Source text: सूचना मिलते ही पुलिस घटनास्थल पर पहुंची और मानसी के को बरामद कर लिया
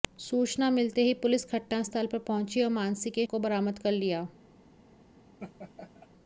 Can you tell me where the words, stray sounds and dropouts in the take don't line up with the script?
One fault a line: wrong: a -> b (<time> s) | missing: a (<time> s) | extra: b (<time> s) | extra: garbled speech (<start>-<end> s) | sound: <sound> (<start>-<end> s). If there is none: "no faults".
sound: laugh (5.4-6.1 s)